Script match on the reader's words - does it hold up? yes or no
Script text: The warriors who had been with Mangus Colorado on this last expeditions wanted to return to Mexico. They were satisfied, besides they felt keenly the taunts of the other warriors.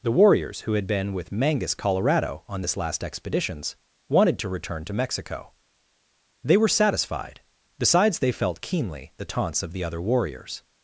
yes